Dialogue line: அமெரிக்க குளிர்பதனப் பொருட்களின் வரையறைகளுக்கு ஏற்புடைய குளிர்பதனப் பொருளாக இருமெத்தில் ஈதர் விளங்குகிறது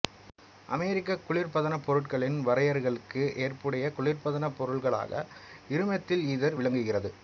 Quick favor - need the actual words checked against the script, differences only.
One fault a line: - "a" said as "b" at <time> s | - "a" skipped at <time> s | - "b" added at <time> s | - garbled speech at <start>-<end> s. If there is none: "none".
none